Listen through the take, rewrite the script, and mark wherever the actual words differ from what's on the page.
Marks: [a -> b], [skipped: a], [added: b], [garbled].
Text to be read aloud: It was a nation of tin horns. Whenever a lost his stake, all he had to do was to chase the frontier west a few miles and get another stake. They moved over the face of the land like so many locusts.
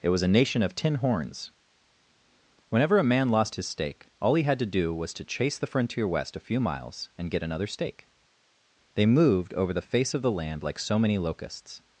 It was a nation of tin horns. Whenever a [added: man] lost his stake, all he had to do was to chase the frontier west a few miles and get another stake. They moved over the face of the land like so many locusts.